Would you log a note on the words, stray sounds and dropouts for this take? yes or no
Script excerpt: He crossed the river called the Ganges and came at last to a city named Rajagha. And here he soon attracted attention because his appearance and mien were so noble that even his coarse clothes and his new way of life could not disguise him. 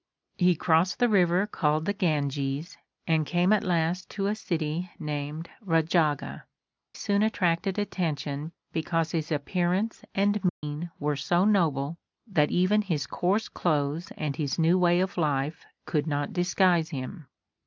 yes